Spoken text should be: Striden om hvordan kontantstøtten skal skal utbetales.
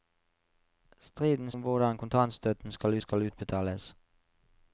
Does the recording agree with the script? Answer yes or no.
yes